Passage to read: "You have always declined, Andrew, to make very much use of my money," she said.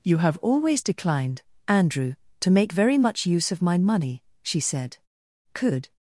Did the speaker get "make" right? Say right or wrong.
right